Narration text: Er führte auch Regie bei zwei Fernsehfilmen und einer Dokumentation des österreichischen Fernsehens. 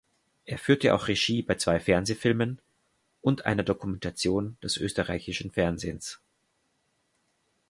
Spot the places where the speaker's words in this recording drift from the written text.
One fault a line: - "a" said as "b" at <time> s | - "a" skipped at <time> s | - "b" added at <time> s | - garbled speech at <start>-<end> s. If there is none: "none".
none